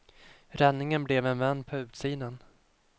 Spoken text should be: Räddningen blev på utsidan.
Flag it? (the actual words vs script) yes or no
yes